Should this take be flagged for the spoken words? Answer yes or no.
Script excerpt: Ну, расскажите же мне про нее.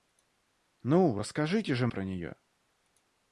yes